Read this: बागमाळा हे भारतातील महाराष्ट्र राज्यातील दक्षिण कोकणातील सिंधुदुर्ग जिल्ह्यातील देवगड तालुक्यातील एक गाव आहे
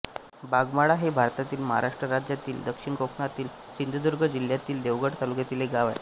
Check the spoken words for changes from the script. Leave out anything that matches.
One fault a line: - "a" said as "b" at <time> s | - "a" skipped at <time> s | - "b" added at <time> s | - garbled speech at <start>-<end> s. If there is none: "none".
none